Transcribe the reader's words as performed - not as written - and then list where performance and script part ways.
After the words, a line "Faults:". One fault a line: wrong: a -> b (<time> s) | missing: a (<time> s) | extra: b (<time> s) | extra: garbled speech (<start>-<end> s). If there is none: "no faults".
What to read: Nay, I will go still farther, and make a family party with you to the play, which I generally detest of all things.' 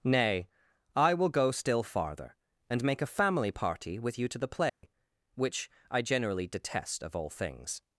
Nay, I will go still farther, and make a family party with you to the play, which I generally detest of all things.'
Faults:
no faults